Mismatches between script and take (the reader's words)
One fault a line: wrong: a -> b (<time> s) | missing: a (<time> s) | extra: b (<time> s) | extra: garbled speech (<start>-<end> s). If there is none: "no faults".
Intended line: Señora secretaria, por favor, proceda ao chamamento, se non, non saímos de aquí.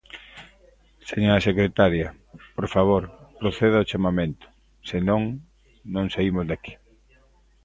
no faults